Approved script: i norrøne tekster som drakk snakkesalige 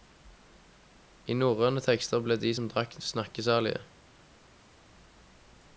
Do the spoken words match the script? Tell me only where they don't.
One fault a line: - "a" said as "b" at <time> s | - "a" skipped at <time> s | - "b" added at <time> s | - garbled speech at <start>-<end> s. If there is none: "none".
- "ble de" added at 2.2 s